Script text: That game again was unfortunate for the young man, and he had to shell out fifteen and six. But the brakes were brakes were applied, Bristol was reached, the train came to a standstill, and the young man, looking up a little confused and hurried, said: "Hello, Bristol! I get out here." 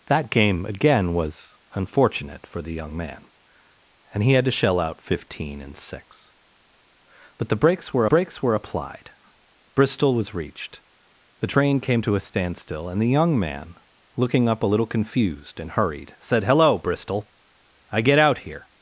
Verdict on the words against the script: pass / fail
pass